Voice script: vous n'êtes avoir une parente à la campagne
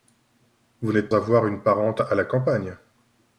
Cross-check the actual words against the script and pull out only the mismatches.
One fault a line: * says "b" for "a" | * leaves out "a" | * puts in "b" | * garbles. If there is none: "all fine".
all fine